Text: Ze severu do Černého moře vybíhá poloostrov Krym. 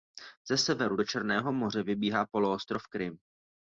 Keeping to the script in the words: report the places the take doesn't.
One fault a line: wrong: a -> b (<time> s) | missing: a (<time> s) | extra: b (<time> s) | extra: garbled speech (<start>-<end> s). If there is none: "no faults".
no faults